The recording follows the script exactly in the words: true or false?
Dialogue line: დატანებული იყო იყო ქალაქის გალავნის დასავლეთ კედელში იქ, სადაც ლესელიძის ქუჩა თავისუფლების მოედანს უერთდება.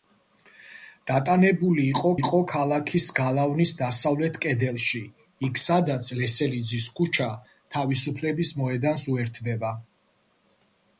true